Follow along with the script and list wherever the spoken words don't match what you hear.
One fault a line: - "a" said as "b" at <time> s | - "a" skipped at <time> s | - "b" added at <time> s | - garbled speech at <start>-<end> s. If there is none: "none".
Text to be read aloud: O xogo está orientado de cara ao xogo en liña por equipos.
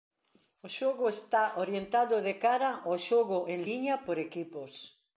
none